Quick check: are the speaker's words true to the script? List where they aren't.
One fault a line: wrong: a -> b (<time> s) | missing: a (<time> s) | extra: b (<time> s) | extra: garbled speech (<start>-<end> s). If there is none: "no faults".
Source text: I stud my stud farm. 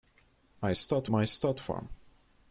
no faults